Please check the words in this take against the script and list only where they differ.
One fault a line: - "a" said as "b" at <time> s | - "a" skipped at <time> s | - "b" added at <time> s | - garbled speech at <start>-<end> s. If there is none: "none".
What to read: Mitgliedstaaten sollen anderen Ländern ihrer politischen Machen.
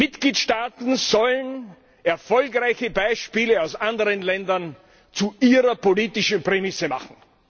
- "erfolgreiche Beispiele aus" added at 2.0 s
- "zu" added at 5.1 s
- "Prämisse" added at 6.4 s